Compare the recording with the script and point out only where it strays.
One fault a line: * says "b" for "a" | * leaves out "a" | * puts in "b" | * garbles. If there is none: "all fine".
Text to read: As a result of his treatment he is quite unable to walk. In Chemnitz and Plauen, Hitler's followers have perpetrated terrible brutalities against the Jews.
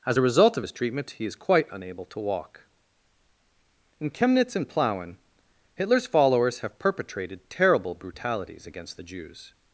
all fine